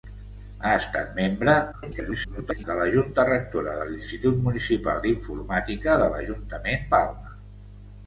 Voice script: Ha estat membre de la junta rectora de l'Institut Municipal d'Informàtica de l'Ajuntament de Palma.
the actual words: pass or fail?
fail